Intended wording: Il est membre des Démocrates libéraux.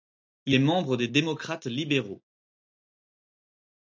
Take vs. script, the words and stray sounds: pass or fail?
pass